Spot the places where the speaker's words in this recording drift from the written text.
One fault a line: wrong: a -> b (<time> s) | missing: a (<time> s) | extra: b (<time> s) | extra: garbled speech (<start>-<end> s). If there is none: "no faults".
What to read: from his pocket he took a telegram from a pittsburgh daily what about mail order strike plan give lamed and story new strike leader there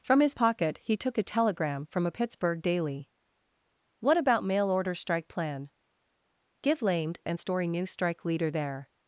no faults